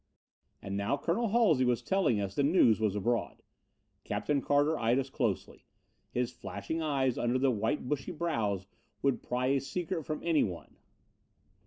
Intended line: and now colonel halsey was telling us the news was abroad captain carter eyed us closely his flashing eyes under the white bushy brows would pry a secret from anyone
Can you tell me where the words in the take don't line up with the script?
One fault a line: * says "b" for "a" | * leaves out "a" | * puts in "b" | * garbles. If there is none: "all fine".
all fine